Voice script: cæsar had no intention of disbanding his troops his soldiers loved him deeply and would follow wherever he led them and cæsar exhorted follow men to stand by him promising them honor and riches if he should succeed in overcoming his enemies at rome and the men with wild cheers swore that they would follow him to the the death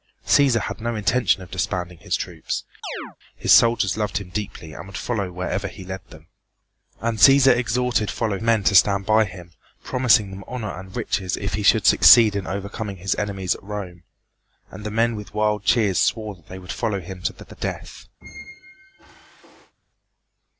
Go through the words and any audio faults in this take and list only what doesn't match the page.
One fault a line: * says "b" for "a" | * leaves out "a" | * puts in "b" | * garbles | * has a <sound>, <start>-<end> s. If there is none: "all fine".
* has a chirp, 2.8-3.2 s
* has a squeak, 18.2-19.7 s